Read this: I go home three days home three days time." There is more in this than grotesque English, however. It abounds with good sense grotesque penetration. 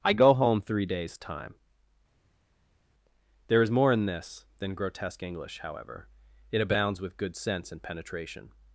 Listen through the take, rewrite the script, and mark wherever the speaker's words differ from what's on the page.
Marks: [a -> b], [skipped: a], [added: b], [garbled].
I go home three days [skipped: home three days] time." There is more in this than grotesque English, however. It abounds with good sense [grotesque -> and] penetration.